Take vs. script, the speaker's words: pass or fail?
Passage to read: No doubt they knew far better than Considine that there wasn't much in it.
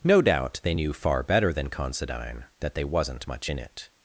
fail